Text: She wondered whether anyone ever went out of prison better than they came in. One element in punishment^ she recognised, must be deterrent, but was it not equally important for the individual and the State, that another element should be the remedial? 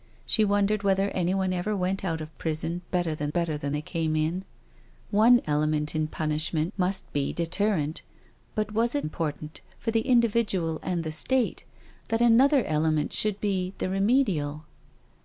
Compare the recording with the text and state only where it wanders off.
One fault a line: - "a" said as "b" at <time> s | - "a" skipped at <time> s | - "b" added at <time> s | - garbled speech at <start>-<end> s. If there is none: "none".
- "better than" added at 3.3 s
- "she recognised" skipped at 6.7 s
- "not equally" skipped at 9.1 s